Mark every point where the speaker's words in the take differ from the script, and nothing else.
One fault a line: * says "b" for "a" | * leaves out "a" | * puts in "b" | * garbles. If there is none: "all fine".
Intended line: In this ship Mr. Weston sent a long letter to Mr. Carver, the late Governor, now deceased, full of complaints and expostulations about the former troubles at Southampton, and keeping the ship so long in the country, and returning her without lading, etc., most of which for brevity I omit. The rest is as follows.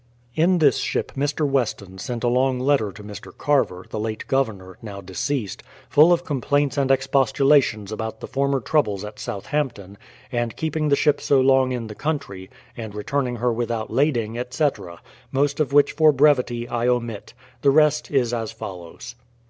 all fine